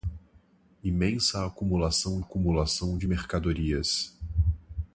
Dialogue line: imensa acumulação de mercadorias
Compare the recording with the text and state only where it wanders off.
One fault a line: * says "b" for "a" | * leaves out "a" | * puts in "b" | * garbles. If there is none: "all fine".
* puts in "acumulação"